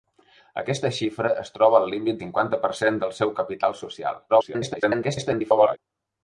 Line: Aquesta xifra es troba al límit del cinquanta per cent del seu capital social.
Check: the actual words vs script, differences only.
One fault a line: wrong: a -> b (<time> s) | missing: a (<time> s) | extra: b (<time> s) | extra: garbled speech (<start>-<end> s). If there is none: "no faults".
missing: del (2.2 s)
extra: garbled speech (4.3-5.8 s)